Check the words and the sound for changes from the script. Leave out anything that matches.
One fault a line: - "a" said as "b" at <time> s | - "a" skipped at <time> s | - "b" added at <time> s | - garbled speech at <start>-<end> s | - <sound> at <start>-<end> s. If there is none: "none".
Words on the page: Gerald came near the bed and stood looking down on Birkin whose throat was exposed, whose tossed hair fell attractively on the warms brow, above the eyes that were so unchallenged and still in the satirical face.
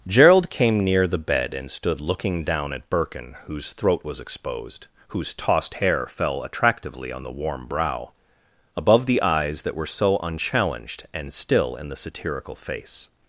- "on" said as "at" at 2.7 s
- "warms" said as "warm" at 7.3 s